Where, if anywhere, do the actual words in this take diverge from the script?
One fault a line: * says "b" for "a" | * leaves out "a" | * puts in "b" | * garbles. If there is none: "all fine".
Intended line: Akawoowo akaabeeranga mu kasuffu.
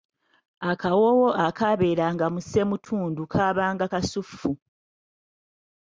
* puts in "ssemutundu kaabanga"